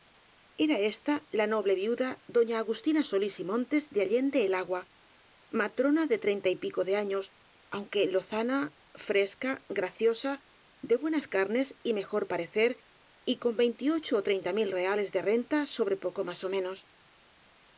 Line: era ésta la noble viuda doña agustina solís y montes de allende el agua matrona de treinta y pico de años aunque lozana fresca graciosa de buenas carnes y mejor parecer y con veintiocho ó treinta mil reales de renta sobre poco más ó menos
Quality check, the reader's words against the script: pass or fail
pass